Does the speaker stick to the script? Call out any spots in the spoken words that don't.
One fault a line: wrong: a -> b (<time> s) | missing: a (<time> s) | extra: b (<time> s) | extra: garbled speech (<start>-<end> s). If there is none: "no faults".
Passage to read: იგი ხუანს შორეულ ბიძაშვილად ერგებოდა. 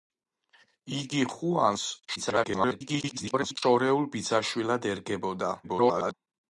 extra: garbled speech (2.2-3.6 s)
extra: garbled speech (5.6-6.1 s)